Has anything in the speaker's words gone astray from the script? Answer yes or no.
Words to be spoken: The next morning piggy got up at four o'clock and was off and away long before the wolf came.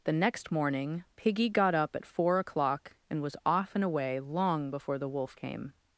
no